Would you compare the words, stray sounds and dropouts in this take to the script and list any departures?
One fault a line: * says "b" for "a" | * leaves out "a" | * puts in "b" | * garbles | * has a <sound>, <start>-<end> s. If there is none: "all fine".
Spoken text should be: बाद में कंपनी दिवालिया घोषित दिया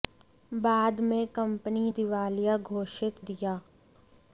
all fine